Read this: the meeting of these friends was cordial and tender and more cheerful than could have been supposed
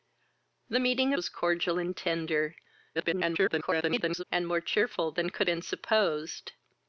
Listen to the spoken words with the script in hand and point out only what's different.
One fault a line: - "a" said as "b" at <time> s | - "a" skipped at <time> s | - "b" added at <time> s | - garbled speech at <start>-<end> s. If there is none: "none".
- "of these friends" skipped at 1.1 s
- garbled speech at 2.9-4.2 s
- "have" skipped at 5.5 s